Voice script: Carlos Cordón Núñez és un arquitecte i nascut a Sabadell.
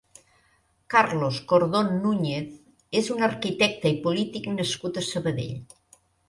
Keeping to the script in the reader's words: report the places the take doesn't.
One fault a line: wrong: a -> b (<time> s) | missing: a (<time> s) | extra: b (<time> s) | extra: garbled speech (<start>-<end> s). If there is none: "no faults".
extra: polític (4.1 s)